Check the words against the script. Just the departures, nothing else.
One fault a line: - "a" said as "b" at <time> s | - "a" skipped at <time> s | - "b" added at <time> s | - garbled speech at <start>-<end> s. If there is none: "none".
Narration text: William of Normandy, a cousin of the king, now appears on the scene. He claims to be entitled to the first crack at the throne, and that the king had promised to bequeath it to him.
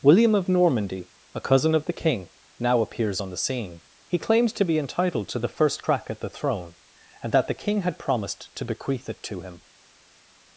none